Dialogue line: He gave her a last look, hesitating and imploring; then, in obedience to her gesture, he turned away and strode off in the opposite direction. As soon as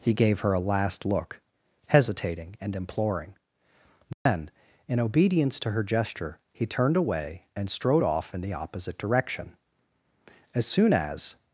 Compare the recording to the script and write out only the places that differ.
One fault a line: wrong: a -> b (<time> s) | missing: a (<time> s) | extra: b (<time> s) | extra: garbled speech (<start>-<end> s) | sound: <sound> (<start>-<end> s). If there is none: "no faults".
sound: dropout (4.1-4.3 s)